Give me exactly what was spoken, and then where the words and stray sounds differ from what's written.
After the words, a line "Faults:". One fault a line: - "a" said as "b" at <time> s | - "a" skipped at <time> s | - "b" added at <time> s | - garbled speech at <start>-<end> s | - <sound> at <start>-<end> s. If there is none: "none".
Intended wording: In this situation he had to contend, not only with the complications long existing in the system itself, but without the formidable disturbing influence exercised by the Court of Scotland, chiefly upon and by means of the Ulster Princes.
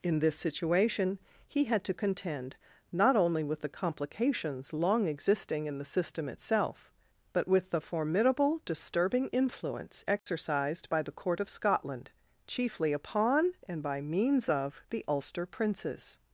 In this situation he had to contend, not only with the complications long existing in the system itself, but with the formidable disturbing influence exercised by the Court of Scotland, chiefly upon and by means of the Ulster Princes.
Faults:
- "without" said as "with" at 7.5 s
- dropout at 10.2-10.3 s